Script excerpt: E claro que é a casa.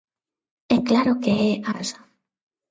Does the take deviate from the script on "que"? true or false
false